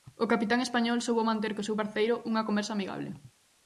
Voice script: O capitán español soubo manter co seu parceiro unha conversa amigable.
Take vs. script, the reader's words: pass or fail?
pass